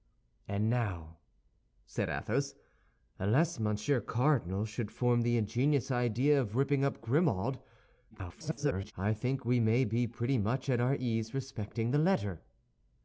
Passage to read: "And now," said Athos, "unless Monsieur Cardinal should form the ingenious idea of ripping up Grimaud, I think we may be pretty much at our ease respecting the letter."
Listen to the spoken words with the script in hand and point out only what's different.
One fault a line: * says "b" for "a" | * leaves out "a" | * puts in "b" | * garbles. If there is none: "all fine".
* garbles